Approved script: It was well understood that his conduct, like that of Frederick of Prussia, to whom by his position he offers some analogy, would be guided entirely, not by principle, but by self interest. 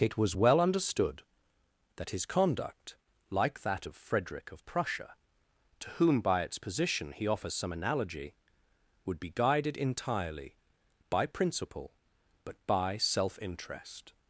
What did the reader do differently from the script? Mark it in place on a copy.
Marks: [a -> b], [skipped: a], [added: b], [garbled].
It was well understood that his conduct, like that of Frederick of Prussia, to whom by [his -> its] position he offers some analogy, would be guided entirely, [skipped: not] by principle, but by self interest.